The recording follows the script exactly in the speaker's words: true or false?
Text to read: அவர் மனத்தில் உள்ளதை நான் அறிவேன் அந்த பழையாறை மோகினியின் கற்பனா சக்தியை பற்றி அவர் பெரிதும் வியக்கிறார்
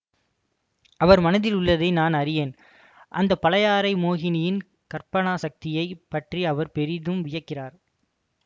true